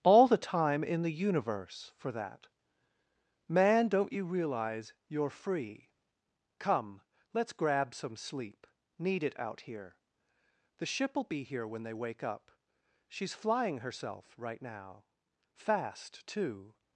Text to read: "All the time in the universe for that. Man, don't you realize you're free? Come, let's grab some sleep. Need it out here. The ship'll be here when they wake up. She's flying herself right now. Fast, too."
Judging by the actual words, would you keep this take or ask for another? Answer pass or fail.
pass